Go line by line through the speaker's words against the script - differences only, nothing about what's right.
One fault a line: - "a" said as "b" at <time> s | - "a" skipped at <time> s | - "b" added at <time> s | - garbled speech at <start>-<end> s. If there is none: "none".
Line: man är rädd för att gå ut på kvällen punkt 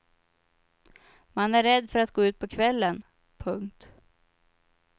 none